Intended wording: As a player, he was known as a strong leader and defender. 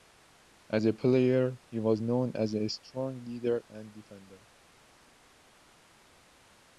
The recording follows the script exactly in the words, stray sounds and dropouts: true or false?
true